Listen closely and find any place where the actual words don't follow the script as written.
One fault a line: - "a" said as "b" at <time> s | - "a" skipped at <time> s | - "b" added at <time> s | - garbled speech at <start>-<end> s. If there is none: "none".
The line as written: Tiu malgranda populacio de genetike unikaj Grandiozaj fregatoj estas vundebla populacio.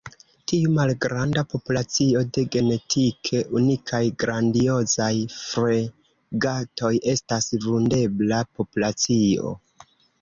none